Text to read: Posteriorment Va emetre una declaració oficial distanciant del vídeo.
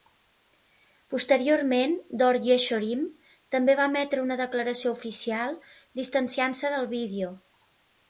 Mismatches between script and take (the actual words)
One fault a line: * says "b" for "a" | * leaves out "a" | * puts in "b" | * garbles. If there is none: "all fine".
* puts in "Dor Yeshorim també"
* puts in "se"